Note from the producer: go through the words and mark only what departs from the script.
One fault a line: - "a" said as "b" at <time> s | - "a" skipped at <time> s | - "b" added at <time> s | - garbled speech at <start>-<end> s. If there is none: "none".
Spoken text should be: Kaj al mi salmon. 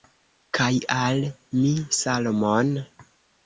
none